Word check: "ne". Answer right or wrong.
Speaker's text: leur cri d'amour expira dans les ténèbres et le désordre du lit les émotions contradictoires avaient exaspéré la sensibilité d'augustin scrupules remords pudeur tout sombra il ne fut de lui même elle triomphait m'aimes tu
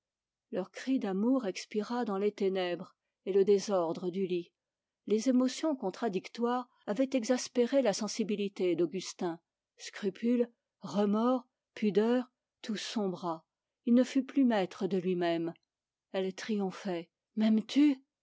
right